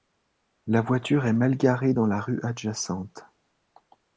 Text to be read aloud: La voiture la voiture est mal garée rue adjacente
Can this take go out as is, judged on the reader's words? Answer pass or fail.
fail